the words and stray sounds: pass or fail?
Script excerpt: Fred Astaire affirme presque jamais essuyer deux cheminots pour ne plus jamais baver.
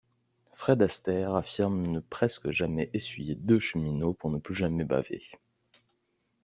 fail